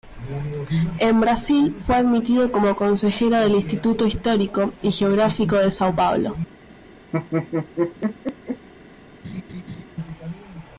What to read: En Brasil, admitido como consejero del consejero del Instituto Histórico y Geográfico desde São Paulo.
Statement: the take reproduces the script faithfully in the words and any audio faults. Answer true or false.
false